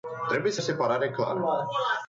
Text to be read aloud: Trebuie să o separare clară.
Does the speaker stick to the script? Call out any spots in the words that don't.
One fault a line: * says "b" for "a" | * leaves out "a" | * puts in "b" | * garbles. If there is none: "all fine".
all fine